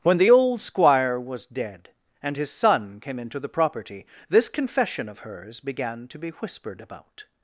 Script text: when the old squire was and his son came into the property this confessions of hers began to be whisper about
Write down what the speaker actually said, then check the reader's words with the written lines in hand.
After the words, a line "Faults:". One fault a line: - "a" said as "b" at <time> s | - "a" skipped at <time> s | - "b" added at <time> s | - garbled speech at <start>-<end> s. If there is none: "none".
when the old squire was dead and his son came into the property this confession of hers began to be whispered about
Faults:
- "dead" added at 1.5 s
- "confessions" said as "confession" at 4.5 s
- "whisper" said as "whispered" at 6.3 s